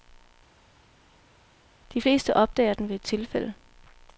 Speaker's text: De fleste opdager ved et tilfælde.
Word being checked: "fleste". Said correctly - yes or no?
yes